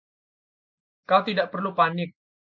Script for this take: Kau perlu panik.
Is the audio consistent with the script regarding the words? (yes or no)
no